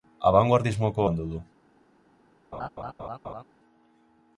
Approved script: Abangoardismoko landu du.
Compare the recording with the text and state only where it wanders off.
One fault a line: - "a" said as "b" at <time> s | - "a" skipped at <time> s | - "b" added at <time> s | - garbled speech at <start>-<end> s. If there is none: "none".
none